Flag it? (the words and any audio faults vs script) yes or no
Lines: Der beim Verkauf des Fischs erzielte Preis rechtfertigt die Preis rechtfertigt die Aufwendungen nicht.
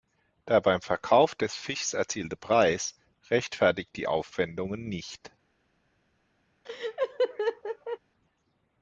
yes